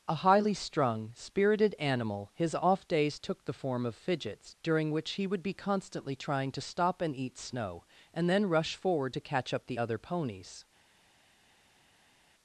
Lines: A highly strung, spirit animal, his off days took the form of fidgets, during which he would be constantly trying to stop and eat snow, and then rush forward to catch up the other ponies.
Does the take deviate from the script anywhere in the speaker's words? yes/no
yes